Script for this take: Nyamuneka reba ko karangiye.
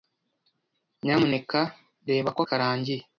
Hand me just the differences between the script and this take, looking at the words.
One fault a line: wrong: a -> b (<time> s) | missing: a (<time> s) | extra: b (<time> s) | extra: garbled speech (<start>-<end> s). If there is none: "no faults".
no faults